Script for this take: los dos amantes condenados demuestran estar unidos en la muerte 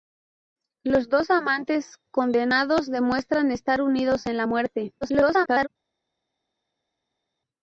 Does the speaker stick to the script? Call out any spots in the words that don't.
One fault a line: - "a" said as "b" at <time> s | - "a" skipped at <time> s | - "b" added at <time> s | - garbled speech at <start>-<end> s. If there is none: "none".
- garbled speech at 5.0-5.7 s